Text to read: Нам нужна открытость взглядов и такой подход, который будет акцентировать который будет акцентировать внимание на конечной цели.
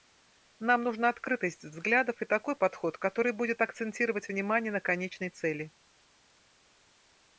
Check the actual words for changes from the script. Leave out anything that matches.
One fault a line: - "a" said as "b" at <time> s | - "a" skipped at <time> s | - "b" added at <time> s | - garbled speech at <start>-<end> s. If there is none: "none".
- "который будет акцентировать" skipped at 4.3 s